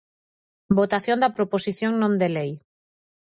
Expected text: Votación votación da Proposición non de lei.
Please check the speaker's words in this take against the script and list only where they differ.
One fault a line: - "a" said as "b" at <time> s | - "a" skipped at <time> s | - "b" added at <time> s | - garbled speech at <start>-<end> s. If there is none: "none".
- "votación" skipped at 1.2 s